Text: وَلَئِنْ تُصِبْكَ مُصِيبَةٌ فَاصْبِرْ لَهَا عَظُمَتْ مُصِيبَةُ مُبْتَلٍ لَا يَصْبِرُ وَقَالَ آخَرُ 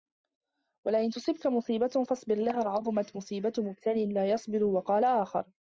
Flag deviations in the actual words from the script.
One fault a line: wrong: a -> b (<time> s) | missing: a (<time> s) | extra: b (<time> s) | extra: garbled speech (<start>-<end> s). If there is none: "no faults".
no faults